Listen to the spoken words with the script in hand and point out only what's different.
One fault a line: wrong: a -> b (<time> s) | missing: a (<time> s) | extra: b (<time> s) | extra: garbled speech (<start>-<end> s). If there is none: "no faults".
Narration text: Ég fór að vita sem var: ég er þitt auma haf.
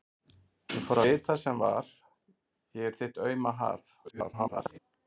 missing: að (1.0 s)
extra: garbled speech (4.0-4.8 s)